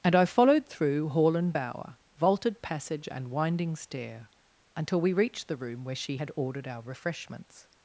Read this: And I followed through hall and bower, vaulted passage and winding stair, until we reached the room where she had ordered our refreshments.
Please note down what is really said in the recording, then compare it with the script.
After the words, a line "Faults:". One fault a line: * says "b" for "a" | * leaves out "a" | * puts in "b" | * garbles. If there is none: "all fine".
And I followed through hall and bower, vaulted passage and winding stair, until we reached the room where she had ordered our refreshments.
Faults:
all fine